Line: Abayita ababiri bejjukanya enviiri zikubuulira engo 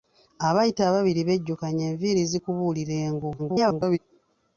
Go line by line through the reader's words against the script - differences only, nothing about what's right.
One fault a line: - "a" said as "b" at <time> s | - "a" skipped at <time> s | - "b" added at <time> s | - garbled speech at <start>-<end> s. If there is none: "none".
- garbled speech at 3.4-4.0 s